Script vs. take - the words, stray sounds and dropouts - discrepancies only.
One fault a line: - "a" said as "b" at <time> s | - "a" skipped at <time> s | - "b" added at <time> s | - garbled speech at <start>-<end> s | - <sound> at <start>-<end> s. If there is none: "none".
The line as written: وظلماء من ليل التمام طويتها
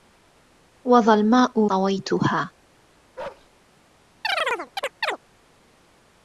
- "من ليل التمام" skipped at 1.7 s
- bark at 3.2-3.5 s
- chirp at 4.2-5.2 s